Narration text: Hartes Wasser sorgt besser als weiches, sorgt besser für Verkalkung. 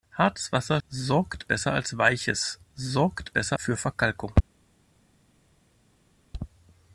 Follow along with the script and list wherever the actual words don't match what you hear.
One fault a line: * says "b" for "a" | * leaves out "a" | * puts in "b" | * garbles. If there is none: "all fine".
all fine